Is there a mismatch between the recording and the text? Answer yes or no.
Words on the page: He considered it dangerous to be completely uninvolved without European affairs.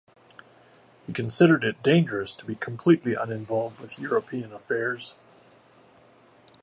yes